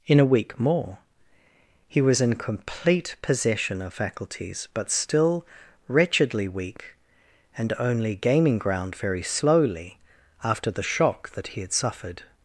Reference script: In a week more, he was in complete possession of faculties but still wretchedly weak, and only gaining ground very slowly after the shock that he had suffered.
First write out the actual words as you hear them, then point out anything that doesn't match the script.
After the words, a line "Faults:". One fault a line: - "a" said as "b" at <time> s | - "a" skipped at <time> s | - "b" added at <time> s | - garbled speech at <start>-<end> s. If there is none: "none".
In a week more, he was in complete possession of faculties but still wretchedly weak, and only gaining ground very slowly after the shock that he had suffered.
Faults:
none